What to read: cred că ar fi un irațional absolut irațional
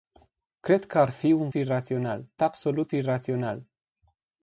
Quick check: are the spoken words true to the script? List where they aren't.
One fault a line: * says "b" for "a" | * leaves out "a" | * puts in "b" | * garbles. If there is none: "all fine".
all fine